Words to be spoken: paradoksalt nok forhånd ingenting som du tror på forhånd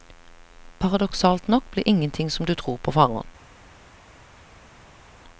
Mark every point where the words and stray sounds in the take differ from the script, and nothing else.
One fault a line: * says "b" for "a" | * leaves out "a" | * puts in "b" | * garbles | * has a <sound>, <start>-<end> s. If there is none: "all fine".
* says "blir" for "forhånd"